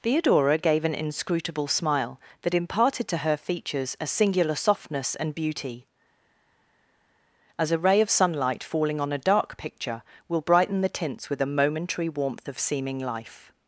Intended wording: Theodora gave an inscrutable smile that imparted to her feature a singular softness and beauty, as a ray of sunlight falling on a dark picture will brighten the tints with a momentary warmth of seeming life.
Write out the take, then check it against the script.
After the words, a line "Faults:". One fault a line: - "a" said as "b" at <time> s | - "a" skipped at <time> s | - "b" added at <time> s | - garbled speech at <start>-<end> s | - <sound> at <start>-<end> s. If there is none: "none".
Theodora gave an inscrutable smile that imparted to her features a singular softness and beauty, as a ray of sunlight falling on a dark picture will brighten the tints with a momentary warmth of seeming life.
Faults:
- "feature" said as "features" at 3.4 s